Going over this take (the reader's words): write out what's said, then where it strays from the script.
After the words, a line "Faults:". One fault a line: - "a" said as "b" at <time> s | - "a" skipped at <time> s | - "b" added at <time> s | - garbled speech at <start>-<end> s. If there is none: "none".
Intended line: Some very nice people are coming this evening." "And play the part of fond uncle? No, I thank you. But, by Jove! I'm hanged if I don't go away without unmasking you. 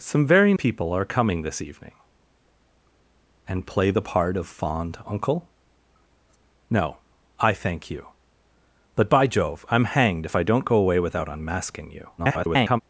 Some very people are coming this evening." "And play the part of fond uncle? No, I thank you. But, by Jove! I'm hanged if I don't go away without unmasking you. [garbled]
Faults:
- "nice" skipped at 0.6 s
- garbled speech at 12.2-12.8 s